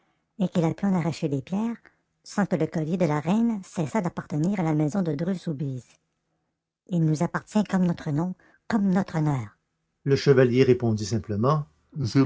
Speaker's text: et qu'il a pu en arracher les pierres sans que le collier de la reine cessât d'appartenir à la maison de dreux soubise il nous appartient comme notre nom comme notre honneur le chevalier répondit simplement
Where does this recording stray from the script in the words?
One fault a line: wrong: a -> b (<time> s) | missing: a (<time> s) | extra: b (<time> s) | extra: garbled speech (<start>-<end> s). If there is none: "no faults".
no faults